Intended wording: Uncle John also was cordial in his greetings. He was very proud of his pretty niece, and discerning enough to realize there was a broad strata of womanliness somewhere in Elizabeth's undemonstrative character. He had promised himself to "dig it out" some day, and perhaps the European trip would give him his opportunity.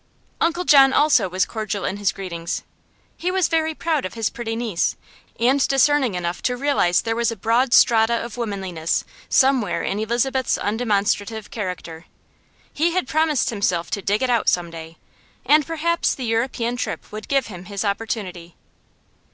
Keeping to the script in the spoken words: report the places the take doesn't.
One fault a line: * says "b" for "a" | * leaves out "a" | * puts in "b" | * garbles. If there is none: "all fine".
all fine